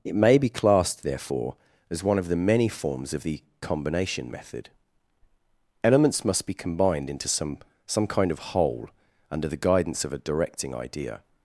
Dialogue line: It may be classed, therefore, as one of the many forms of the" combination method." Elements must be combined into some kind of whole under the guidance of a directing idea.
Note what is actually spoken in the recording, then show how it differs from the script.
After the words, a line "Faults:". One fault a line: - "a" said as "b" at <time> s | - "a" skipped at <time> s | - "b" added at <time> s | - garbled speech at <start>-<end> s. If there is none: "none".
It may be classed, therefore, as one of the many forms of the" combination method." Elements must be combined into some some kind of whole under the guidance of a directing idea.
Faults:
- "some" added at 7.9 s